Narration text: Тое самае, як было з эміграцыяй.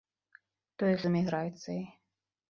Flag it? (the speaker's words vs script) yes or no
yes